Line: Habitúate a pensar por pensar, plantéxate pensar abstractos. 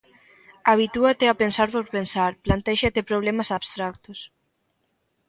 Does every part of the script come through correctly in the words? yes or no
no